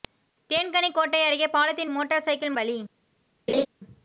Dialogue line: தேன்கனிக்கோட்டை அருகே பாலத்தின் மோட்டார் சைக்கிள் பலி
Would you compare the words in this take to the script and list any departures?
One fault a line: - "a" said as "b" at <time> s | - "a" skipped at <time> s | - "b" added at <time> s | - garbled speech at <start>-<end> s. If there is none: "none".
none